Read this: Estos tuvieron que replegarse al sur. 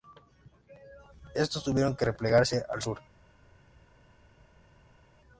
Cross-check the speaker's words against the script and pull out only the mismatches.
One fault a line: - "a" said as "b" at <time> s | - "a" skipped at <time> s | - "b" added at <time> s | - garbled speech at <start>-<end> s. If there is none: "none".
none